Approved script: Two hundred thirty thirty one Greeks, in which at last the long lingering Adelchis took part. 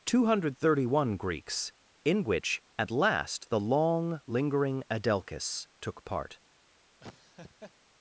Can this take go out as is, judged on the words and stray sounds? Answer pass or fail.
fail